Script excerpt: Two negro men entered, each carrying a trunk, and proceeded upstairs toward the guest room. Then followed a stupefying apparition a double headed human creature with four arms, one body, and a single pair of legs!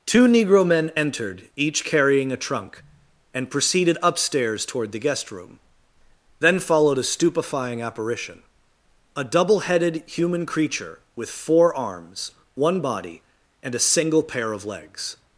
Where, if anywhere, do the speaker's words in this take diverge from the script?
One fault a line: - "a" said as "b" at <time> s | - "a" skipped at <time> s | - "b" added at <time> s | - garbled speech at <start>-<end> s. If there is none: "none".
none